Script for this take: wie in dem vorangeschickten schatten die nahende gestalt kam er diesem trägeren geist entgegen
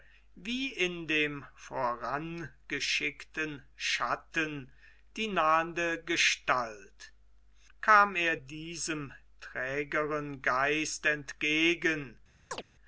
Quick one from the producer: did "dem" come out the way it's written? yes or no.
yes